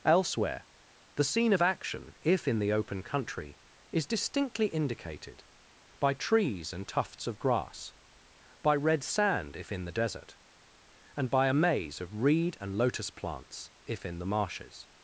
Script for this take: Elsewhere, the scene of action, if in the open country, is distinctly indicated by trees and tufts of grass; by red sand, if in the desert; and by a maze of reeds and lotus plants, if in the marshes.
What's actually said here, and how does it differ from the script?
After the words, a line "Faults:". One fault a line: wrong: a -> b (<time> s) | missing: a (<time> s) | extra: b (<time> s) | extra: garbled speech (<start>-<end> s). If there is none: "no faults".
Elsewhere, the scene of action, if in the open country, is distinctly indicated by trees and tufts of grass; by red sand, if in the desert; and by a maze of reed and lotus plants, if in the marshes.
Faults:
wrong: reeds -> reed (12.2 s)